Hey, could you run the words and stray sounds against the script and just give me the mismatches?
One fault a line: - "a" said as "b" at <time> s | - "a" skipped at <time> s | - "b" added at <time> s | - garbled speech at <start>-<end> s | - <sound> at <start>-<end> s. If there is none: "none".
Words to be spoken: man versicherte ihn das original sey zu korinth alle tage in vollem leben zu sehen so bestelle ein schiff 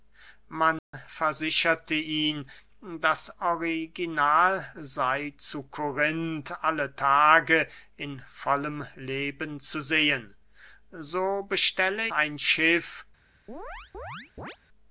- dropout at 0.8-0.9 s
- chirp at 13.5-14.6 s